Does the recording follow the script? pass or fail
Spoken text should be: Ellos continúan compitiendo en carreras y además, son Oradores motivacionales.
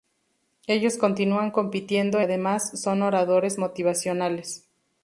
fail